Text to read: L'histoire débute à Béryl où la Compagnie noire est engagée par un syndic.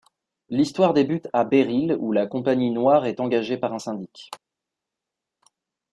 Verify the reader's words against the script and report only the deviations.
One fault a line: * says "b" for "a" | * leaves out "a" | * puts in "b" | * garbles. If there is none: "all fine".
all fine